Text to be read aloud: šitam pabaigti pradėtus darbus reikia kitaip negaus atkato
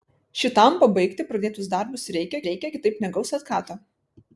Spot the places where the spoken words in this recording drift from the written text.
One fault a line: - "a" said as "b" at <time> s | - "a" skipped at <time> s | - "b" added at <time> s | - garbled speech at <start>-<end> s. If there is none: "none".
- "reikia" added at 2.5 s